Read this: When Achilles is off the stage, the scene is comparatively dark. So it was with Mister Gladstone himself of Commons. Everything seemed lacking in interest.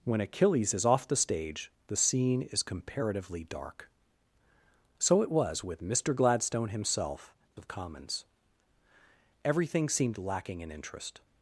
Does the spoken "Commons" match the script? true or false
true